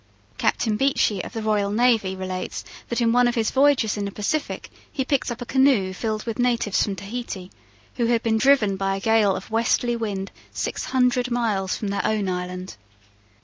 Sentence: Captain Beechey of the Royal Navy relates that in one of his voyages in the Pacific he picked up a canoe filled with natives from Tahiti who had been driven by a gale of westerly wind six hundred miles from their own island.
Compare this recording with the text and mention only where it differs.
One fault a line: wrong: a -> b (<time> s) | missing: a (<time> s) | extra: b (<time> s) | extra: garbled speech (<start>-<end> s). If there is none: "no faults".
no faults